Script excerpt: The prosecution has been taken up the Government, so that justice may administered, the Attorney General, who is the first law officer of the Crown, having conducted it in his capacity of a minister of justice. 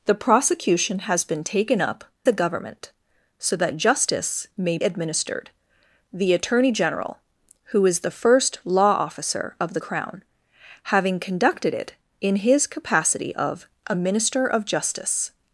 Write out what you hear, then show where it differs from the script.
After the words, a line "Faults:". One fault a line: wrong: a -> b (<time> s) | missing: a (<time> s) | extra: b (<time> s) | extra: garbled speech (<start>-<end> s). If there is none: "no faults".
The prosecution has been taken up the Government, so that justice may administered, the Attorney General, who is the first law officer of the Crown, having conducted it in his capacity of a minister of justice.
Faults:
no faults